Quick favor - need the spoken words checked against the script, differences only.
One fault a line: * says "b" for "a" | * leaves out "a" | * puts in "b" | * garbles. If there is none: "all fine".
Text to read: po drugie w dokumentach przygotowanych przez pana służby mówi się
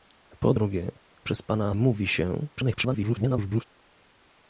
* leaves out "w dokumentach przygotowanych"
* leaves out "służby"
* garbles